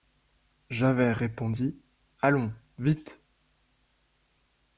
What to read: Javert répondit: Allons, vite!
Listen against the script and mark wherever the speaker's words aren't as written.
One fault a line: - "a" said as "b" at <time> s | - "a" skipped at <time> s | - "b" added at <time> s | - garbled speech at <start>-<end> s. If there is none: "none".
none